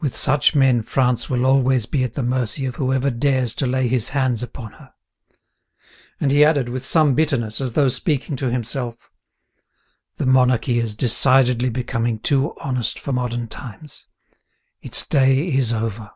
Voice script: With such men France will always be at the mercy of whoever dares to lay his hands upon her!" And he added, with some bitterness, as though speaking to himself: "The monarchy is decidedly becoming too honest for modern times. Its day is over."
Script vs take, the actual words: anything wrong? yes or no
no